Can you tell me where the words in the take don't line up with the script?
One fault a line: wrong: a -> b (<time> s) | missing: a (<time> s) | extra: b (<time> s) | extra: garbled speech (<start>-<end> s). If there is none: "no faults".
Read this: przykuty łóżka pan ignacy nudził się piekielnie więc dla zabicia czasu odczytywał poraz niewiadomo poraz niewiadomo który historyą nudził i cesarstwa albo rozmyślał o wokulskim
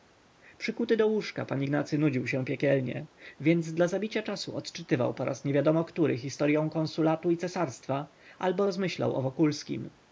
extra: do (1.0 s)
missing: poraz niewiadomo (5.8 s)
wrong: nudził -> konsulatu (6.7 s)